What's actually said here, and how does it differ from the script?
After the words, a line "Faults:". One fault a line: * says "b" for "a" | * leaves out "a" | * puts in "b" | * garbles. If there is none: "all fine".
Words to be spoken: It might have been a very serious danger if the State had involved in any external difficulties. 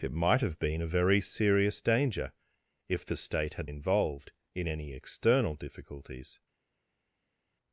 It might have been a very serious danger if the State had involved in any external difficulties.
Faults:
all fine